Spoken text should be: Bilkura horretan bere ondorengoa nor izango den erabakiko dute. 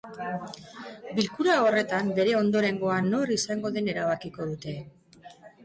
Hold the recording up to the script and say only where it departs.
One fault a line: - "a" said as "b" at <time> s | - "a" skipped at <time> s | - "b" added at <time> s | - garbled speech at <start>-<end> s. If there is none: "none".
none